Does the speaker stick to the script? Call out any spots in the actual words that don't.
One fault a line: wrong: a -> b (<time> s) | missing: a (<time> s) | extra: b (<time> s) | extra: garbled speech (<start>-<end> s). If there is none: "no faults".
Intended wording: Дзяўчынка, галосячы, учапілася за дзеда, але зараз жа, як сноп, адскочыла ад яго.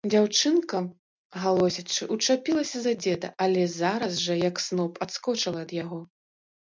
no faults